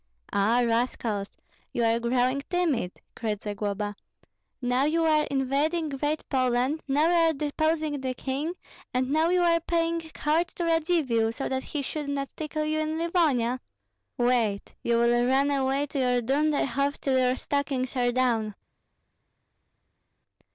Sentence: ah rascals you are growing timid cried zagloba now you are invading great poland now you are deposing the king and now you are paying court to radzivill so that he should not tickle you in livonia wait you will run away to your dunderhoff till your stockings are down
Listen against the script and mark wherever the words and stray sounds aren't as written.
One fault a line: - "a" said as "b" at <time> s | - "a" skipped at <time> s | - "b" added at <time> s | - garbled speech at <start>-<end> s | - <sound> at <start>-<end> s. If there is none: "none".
none